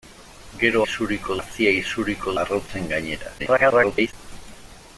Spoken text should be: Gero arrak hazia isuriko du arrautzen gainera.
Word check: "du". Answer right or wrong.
wrong